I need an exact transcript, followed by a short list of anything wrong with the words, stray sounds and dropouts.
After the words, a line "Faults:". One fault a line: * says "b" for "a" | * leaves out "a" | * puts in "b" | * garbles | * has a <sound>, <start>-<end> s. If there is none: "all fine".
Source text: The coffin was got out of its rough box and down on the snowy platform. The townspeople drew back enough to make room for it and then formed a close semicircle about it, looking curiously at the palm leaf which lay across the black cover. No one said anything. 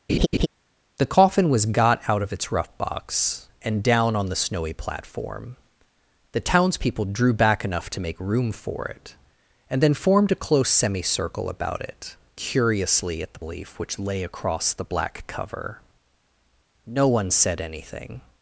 The coffin was got out of its rough box and down on the snowy platform. The townspeople drew back enough to make room for it and then formed a close semicircle about it, curiously at the leaf which lay across the black cover. No one said anything.
Faults:
* has a laugh, 0.1-0.5 s
* leaves out "looking"
* leaves out "palm"